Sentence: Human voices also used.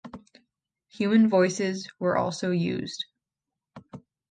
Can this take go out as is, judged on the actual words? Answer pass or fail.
fail